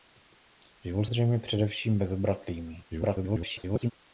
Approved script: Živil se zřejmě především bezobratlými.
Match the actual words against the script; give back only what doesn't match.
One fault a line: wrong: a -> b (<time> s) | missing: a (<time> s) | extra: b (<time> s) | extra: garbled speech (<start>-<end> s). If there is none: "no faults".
missing: se (1.1 s)
extra: garbled speech (2.9-3.9 s)